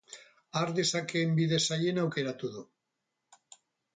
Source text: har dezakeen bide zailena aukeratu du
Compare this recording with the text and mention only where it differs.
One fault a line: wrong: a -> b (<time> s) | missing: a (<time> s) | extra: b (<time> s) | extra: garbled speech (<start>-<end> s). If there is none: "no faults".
no faults